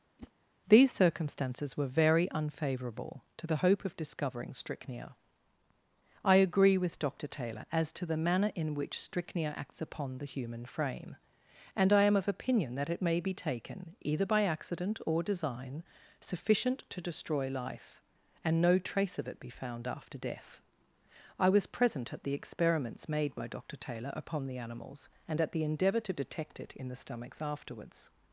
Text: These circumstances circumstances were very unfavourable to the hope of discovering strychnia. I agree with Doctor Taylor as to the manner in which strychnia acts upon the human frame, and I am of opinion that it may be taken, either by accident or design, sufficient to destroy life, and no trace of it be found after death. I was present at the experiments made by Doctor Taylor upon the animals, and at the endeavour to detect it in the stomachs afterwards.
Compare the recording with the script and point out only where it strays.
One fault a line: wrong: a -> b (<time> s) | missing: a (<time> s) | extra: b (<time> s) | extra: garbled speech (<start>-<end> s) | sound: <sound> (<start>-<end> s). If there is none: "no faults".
sound: whoosh (0.2-0.3 s)
missing: circumstances (1.8 s)